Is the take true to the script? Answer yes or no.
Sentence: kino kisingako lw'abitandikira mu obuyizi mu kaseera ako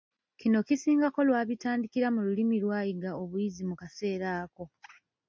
no